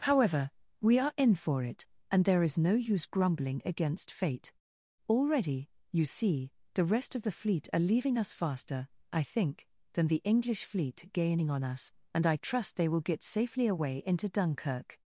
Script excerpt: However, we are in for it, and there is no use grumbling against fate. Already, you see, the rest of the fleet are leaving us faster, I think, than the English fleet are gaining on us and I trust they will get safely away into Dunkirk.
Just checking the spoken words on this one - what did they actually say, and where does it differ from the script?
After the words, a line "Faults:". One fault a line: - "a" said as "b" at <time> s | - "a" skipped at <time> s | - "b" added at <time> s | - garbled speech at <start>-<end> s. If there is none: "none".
However, we are in for it, and there is no use grumbling against fate. Already, you see, the rest of the fleet are leaving us faster, I think, than the English fleet gaining on us and I trust they will get safely away into Dunkirk.
Faults:
- "are" skipped at 11.1 s